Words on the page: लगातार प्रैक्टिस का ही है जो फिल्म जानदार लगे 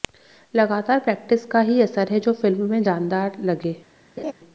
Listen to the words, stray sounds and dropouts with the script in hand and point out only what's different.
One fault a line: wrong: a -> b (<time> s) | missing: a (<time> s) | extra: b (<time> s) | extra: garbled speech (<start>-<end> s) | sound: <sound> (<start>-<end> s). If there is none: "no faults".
extra: असर (1.8 s)
extra: में (2.7 s)
sound: laugh (4.2-4.3 s)